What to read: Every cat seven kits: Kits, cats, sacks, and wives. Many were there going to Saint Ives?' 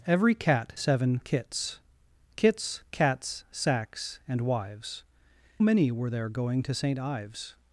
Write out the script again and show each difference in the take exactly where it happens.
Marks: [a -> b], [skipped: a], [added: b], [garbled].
Every cat seven kits: Kits, cats, sacks, and wives. Many were there going to Saint Ives?'